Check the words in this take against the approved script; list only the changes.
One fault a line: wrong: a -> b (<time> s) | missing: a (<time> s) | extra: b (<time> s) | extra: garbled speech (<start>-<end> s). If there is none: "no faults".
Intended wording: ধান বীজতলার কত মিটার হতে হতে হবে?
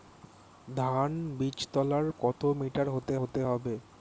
no faults